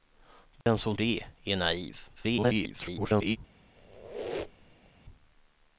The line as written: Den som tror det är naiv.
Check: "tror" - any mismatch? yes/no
yes